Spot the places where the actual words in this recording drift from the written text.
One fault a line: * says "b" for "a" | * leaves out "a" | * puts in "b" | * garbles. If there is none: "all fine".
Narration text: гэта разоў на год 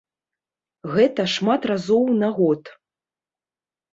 * puts in "шмат"